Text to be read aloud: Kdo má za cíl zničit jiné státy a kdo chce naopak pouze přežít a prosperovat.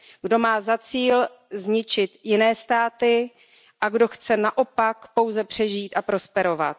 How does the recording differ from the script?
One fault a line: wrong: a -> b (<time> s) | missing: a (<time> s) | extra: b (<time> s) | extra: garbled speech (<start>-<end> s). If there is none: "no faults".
no faults